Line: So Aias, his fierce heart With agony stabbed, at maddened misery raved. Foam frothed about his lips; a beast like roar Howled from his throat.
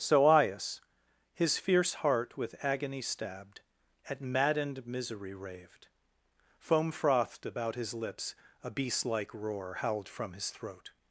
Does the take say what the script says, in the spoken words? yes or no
yes